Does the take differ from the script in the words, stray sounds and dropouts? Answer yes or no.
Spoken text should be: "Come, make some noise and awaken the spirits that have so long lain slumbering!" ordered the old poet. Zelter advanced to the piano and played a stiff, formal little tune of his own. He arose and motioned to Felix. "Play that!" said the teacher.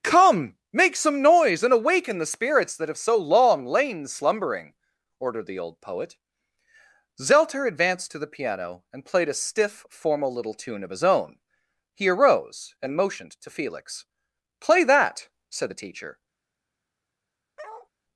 yes